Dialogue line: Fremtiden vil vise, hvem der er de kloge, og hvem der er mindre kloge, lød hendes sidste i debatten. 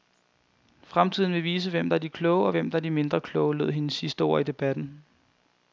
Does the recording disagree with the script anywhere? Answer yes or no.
yes